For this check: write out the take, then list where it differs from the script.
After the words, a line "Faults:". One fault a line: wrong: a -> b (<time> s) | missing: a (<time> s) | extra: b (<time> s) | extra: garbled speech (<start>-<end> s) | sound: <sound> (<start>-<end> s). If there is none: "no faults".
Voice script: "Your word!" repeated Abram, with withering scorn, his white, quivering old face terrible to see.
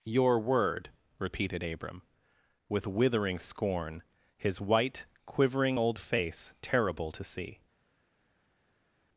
"Your word!" repeated Abram, with withering scorn, his white, quivering old face terrible to see.
Faults:
no faults